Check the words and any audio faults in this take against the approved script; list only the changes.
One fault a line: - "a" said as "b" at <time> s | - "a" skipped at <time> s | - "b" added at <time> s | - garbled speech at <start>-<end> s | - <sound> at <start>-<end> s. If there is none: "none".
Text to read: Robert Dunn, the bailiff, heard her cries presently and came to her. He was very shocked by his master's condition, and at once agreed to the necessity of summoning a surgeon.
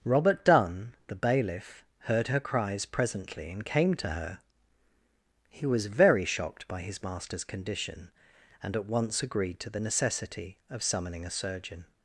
none